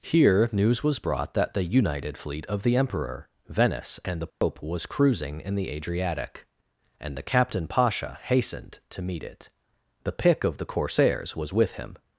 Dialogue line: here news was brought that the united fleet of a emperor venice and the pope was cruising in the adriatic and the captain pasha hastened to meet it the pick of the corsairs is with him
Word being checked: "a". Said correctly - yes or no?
no